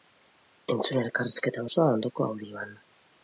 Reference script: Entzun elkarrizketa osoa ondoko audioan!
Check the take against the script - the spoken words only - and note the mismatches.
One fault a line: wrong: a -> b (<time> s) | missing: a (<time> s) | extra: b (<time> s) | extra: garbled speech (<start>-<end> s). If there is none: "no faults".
no faults